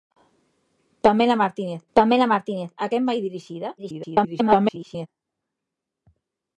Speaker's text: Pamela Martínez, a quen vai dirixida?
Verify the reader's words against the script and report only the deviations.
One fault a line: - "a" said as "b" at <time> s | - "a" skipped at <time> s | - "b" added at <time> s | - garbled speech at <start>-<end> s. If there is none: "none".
- "pamela Martínez" added at 2.0 s
- garbled speech at 3.8-5.1 s